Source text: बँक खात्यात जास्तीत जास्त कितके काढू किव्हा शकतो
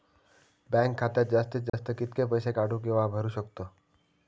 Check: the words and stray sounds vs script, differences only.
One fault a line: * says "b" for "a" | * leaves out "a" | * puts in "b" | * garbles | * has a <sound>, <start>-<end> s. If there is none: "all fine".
* has a dropout, 1.7-1.7 s
* puts in "पैसे"
* puts in "भरू"